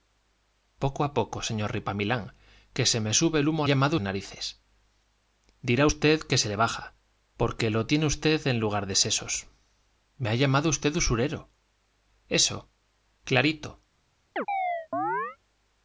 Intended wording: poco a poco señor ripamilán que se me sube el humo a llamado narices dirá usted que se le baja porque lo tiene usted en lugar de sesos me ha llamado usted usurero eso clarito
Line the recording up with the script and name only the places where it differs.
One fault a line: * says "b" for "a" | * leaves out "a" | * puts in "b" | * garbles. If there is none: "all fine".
all fine